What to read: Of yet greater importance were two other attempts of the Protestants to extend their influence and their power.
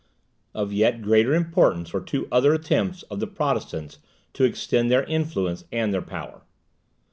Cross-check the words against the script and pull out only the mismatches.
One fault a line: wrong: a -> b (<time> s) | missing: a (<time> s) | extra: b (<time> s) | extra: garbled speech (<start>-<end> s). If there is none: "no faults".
no faults